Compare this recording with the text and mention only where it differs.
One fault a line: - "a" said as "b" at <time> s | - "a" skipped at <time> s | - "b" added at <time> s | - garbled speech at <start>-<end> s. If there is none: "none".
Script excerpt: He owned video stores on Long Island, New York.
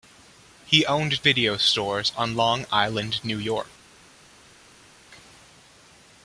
none